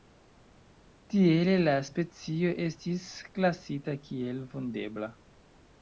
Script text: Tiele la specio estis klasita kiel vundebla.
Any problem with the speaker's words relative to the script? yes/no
no